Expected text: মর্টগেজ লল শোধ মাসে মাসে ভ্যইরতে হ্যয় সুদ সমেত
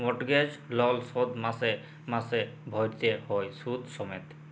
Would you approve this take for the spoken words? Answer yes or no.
yes